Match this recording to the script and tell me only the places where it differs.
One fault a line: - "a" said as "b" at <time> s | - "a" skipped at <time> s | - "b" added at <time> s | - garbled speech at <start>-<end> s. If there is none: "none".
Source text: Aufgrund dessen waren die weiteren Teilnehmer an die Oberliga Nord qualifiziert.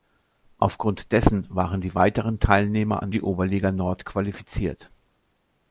none